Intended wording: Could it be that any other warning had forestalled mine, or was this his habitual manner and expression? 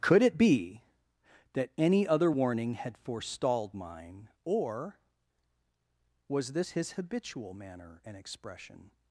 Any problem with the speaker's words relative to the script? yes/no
no